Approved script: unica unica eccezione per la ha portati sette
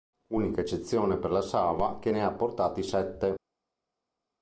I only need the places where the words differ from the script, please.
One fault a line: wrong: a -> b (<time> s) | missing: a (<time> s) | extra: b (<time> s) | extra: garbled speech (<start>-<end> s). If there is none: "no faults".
missing: unica (0.6 s)
extra: sava che ne (1.4 s)